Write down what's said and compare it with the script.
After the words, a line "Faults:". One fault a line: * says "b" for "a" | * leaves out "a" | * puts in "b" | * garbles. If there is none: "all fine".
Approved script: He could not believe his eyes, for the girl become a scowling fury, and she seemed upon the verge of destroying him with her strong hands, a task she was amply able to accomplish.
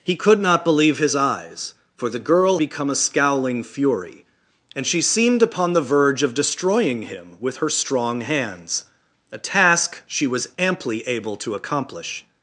He could not believe his eyes, for the girl become a scowling fury, and she seemed upon the verge of destroying him with her strong hands, a task she was amply able to accomplish.
Faults:
all fine